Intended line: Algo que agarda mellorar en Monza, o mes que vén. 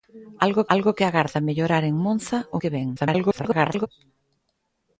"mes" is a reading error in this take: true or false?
true